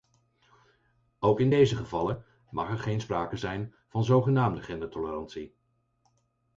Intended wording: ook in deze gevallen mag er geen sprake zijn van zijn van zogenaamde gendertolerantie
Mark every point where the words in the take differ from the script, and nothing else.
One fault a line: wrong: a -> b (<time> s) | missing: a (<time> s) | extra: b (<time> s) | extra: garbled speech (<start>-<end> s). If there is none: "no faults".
missing: zijn van (4.0 s)